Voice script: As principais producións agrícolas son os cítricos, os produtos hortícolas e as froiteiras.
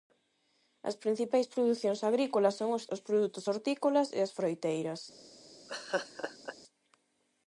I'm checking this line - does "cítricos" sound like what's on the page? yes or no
no